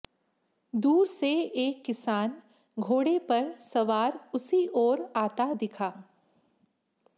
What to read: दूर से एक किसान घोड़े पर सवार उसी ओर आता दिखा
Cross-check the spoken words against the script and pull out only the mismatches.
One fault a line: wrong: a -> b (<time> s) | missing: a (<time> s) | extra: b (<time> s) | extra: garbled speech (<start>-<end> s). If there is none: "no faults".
no faults